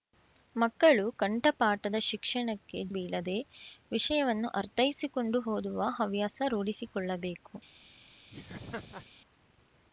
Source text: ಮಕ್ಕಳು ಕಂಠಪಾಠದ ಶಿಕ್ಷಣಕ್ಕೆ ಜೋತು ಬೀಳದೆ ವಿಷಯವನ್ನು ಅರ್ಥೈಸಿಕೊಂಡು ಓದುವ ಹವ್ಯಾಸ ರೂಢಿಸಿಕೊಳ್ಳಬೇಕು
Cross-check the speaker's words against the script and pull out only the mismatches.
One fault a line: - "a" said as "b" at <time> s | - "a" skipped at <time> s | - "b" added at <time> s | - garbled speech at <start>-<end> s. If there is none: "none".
- "ಜೋತು" skipped at 2.8 s